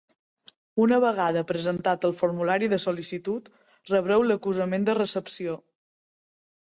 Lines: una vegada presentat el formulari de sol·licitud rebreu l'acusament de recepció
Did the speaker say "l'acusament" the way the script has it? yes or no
yes